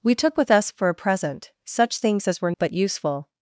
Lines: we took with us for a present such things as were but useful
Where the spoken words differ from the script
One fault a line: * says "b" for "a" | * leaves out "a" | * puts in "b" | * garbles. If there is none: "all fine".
all fine